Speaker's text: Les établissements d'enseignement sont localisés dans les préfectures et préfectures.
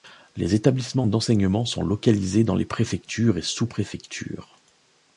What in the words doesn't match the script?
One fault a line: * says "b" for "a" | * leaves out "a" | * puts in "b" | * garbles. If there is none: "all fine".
* puts in "sous"